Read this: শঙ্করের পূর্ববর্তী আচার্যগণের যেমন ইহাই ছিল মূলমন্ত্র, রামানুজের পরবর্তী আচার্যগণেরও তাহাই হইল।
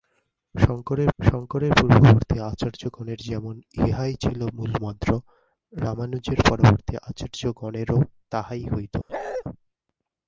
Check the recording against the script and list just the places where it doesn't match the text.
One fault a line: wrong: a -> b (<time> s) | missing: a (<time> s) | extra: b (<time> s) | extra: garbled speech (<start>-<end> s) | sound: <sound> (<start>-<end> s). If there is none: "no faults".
extra: শঙ্করের (1.2 s)
sound: bark (9.1-9.4 s)